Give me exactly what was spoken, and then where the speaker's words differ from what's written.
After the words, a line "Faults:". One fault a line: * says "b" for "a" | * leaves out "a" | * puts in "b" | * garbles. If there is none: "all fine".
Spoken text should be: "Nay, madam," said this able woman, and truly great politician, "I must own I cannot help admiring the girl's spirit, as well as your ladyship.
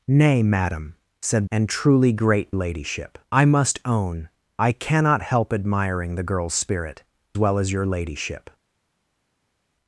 "Nay, madam," said and truly great ladyship, "I must own I cannot help admiring the girl's spirit, well as your ladyship.
Faults:
* leaves out "this able woman"
* says "ladyship" for "politician"
* leaves out "as"